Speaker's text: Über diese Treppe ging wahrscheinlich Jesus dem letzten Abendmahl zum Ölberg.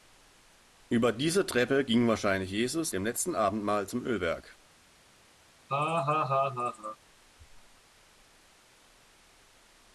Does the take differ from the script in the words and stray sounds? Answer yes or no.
yes